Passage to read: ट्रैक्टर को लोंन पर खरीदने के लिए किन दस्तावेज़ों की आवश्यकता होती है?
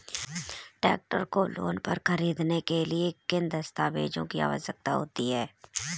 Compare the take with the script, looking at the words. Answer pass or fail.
pass